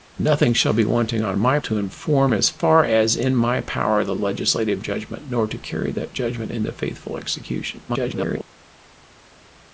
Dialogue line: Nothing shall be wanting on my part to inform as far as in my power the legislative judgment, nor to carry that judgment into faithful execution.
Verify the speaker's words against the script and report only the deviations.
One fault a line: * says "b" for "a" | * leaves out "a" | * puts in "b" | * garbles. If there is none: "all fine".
* leaves out "part"
* garbles